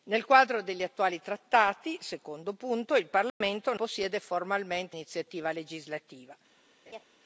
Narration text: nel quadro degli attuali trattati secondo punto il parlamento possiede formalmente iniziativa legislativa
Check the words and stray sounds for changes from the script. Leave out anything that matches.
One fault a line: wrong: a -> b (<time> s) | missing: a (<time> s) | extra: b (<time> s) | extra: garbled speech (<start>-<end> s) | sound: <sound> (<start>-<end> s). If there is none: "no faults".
sound: dropout (3.3-3.4 s)
sound: laugh (6.9-7.0 s)